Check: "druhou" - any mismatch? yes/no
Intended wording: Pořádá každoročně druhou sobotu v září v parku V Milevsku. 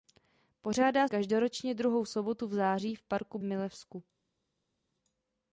no